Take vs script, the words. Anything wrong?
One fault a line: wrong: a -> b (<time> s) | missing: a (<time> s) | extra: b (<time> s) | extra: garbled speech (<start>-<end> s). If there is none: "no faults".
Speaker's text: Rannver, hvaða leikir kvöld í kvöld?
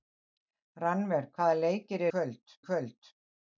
no faults